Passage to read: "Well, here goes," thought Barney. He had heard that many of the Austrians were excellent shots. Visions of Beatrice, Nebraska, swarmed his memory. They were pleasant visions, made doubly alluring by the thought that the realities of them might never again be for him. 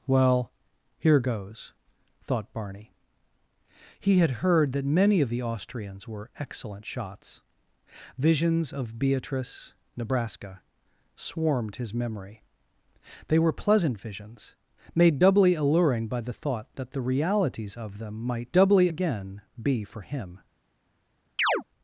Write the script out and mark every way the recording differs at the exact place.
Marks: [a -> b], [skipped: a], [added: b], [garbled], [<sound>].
"Well, here goes," thought Barney. He had heard that many of the Austrians were excellent shots. Visions of Beatrice, Nebraska, swarmed his memory. They were pleasant visions, made doubly alluring by the thought that the realities of them might [never -> doubly] again be for him. [chirp]